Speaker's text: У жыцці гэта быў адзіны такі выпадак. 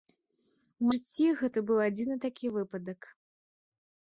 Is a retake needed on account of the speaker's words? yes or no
no